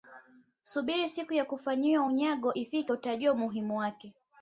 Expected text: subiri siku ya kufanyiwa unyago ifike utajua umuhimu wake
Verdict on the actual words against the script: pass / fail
pass